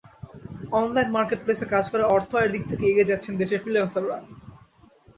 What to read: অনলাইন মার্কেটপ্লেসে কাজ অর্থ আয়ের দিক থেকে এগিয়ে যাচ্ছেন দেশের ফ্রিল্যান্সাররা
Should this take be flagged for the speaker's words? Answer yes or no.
yes